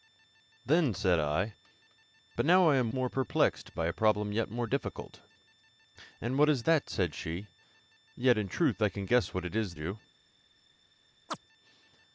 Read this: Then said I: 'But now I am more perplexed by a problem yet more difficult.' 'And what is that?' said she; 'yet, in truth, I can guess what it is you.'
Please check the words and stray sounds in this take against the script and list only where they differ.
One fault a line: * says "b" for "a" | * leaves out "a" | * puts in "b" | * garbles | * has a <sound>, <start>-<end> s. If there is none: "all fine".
* has a chirp, 11.3-11.4 s